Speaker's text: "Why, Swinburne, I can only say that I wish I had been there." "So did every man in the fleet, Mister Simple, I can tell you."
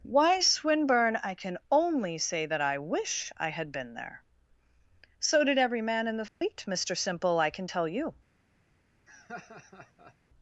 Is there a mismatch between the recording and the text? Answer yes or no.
no